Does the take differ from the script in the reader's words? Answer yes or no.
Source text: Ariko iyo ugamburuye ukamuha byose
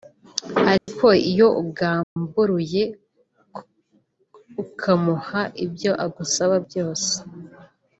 yes